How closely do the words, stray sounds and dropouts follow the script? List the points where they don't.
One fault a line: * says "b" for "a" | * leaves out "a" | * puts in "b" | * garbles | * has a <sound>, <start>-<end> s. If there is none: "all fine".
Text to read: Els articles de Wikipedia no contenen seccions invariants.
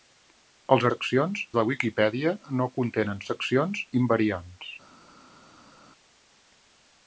* says "seccions" for "articles"